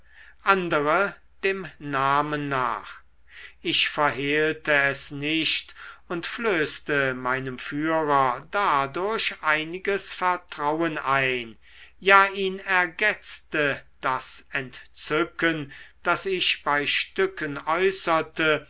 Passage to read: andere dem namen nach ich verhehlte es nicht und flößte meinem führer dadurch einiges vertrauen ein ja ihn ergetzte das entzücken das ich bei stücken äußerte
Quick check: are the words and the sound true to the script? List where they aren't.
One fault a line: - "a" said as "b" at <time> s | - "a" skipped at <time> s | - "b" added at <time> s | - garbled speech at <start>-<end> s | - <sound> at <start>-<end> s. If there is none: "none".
none